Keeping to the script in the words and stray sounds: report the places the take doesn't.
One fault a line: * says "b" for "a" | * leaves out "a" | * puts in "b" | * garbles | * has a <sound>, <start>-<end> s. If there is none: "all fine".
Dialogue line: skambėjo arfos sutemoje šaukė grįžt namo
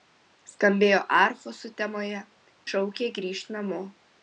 all fine